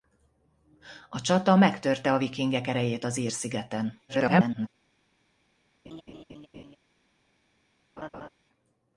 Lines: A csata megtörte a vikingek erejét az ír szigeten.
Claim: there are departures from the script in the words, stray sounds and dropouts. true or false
true